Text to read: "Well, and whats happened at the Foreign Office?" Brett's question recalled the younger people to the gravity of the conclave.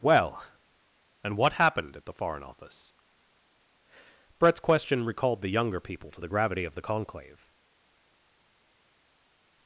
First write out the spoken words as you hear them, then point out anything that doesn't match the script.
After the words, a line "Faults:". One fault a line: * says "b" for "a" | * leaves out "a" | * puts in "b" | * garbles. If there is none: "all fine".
"Well, and what happened at the Foreign Office?" Brett's question recalled the younger people to the gravity of the conclave.
Faults:
* says "what" for "whats"